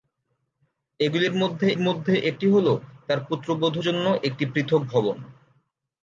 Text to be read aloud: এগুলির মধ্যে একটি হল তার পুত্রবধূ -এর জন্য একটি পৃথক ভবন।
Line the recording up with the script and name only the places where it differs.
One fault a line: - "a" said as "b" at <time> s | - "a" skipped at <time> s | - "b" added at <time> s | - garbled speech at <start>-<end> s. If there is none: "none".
- "মধ্যে" added at 1.8 s
- "এর" skipped at 3.8 s